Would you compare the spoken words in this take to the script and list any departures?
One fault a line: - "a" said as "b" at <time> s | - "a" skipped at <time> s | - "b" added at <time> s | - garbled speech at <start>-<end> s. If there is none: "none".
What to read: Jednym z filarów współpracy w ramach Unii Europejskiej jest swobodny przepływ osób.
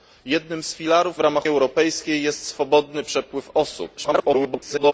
- "współpracy" skipped at 1.2 s
- "Unii" skipped at 1.5 s
- garbled speech at 4.0-4.9 s